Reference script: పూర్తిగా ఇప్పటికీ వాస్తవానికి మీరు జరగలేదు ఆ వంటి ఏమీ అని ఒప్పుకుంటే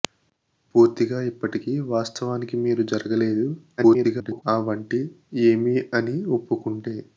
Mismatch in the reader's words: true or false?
true